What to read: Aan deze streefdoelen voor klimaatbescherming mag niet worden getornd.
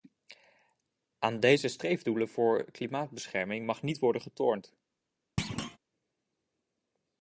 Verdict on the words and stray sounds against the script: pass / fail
fail